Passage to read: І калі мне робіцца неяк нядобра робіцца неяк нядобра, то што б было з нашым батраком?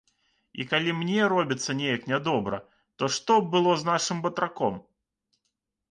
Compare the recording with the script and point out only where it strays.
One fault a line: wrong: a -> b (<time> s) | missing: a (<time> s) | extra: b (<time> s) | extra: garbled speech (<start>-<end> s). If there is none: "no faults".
missing: робіцца неяк нядобра (2.6 s)